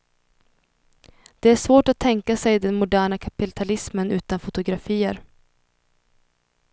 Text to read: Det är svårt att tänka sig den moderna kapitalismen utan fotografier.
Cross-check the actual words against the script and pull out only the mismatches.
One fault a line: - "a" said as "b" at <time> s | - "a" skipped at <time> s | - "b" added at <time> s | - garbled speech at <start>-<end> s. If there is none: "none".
none